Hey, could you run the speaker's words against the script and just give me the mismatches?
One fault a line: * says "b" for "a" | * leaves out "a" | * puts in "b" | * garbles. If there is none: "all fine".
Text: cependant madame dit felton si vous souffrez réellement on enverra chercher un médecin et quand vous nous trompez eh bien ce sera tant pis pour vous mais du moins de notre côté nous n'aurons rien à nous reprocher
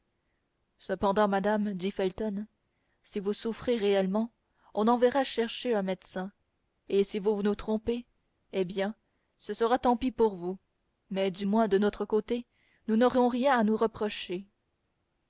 * says "si" for "quand"